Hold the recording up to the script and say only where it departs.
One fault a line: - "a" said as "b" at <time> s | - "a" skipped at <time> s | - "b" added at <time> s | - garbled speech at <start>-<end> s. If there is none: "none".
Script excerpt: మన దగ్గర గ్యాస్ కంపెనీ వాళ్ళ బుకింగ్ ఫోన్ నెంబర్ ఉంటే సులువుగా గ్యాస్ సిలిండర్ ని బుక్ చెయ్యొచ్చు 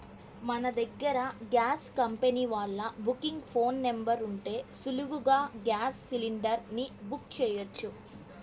none